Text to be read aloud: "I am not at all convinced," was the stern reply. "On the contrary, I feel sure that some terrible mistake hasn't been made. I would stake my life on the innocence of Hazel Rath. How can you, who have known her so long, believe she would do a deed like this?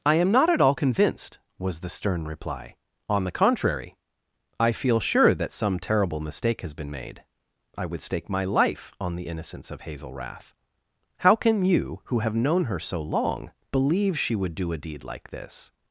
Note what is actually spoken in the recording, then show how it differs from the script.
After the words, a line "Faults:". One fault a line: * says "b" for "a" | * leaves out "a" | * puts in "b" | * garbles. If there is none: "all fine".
"I am not at all convinced," was the stern reply. "On the contrary, I feel sure that some terrible mistake has been made. I would stake my life on the innocence of Hazel Rath. How can you, who have known her so long, believe she would do a deed like this?
Faults:
* says "has" for "hasn't"